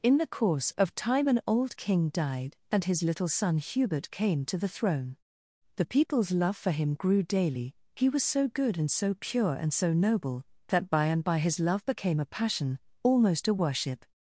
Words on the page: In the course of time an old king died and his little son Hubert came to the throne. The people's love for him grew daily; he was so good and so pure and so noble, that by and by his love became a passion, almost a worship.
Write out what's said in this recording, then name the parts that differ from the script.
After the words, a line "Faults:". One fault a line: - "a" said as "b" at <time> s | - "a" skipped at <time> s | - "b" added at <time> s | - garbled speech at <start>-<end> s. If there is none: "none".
In the course of time an old king died and his little son Hubert came to the throne. The people's love for him grew daily; he was so good and so pure and so noble, that by and by his love became a passion, almost a worship.
Faults:
none